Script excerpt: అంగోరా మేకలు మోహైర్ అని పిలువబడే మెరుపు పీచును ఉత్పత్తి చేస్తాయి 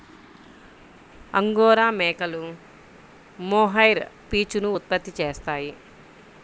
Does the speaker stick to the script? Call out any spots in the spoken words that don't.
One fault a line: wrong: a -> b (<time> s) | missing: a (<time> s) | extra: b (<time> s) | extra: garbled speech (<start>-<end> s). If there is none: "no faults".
missing: అని పిలువబడే మెరుపు (4.0 s)